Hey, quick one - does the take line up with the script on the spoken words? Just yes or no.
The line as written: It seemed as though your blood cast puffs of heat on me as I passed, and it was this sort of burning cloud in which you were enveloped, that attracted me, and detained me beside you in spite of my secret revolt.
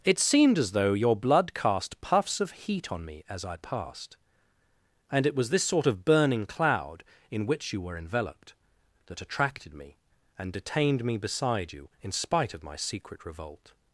yes